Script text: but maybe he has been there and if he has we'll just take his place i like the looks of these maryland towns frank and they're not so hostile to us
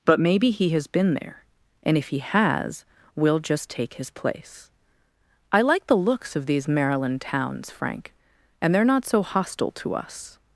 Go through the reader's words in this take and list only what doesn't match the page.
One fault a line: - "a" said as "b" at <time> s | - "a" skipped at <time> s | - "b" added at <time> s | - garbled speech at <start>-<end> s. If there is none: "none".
none